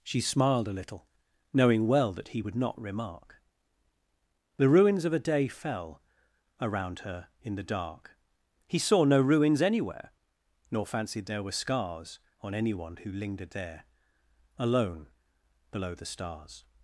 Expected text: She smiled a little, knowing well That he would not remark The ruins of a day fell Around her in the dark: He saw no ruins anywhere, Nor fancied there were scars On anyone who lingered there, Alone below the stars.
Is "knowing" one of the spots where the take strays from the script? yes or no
no